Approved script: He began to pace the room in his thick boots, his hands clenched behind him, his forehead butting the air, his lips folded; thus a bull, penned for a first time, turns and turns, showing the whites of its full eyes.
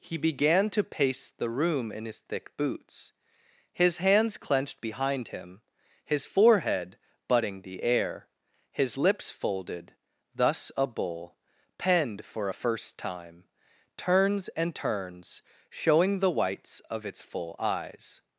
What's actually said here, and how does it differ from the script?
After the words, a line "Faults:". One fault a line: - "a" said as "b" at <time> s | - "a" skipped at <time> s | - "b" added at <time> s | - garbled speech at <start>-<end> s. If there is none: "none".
He began to pace the room in his thick boots, his hands clenched behind him, his forehead butting the air, his lips folded; thus a bull, penned for a first time, turns and turns, showing the whites of its full eyes.
Faults:
none